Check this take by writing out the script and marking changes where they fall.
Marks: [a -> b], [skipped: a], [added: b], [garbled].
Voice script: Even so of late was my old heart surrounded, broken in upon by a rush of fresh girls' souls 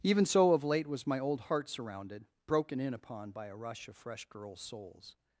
Even so of late was my old heart surrounded, broken in upon by a rush of fresh girls' souls